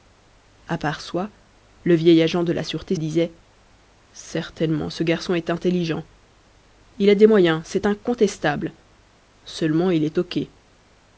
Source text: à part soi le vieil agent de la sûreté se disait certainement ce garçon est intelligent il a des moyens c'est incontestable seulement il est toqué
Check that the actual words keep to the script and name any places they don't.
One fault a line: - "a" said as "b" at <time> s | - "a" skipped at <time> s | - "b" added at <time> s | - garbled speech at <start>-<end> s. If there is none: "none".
- "se" skipped at 3.0 s